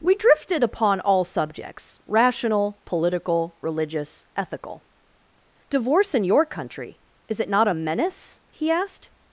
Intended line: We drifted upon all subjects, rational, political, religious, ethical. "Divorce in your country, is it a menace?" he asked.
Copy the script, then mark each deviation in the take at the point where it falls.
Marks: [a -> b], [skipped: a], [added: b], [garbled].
We drifted upon all subjects, rational, political, religious, ethical. "Divorce in your country, is it [added: not] a menace?" he asked.